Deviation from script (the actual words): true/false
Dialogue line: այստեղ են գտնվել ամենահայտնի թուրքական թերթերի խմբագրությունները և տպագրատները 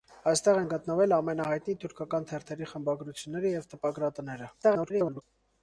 true